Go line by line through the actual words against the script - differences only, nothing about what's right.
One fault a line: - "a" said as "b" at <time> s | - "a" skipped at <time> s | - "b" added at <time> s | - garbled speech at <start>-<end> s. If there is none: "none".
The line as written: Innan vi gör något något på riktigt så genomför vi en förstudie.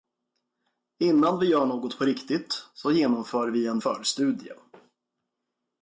- "något" skipped at 2.0 s